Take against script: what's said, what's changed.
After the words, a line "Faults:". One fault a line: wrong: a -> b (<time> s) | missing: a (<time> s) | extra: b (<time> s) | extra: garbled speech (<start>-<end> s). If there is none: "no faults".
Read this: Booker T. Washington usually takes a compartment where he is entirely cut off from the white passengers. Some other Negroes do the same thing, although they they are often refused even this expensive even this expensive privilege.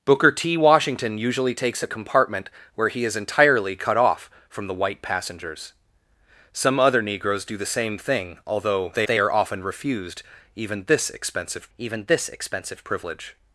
Booker T. Washington usually takes a compartment where he is entirely cut off from the white passengers. Some other Negroes do the same thing, although they they are often refused even this expensive even this expensive privilege.
Faults:
no faults